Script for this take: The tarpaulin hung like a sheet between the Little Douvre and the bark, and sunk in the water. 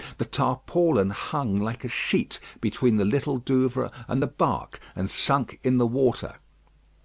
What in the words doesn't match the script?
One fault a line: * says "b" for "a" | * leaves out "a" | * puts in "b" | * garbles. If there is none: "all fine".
all fine